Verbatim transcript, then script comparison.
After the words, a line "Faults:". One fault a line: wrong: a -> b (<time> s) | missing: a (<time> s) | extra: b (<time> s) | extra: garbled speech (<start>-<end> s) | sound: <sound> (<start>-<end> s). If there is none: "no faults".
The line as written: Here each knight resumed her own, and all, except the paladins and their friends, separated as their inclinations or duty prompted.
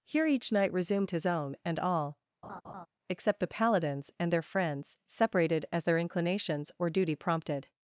Here each knight resumed his own, and all, except the paladins and their friends, separated as their inclinations or duty prompted.
Faults:
wrong: her -> his (1.1 s)
sound: laugh (2.4-2.9 s)